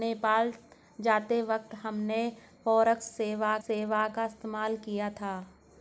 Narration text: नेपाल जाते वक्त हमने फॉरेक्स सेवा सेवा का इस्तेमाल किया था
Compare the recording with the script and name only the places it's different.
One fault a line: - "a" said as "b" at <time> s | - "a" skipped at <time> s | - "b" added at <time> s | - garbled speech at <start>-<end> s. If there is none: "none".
none